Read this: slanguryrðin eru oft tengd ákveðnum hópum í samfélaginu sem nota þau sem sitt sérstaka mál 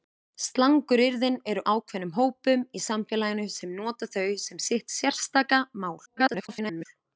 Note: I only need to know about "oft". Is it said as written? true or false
false